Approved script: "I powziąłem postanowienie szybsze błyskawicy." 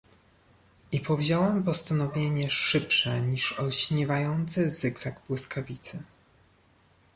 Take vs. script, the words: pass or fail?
fail